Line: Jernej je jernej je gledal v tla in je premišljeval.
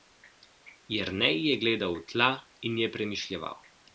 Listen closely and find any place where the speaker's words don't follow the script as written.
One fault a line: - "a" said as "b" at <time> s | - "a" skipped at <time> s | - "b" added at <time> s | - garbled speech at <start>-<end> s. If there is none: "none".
- "jernej je" skipped at 1.6 s